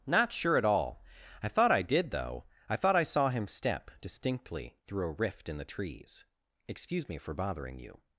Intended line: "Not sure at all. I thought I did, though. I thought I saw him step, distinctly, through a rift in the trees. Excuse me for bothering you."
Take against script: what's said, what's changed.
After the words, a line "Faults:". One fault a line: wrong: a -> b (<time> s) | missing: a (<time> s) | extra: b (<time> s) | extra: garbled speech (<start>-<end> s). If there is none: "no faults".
"Not sure at all. I thought I did, though. I thought I saw him step, distinctly, through a rift in the trees. Excuse me for bothering you."
Faults:
no faults